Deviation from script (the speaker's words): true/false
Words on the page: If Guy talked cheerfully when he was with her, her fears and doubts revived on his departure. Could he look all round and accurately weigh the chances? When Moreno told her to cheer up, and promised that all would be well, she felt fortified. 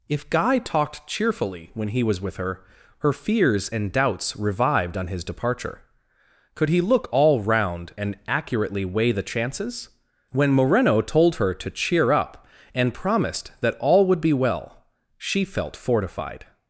false